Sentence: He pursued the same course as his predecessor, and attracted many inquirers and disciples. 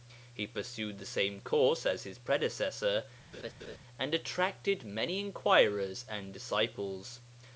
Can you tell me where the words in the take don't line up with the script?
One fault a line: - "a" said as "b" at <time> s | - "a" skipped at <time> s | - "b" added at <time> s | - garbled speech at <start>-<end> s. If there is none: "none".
none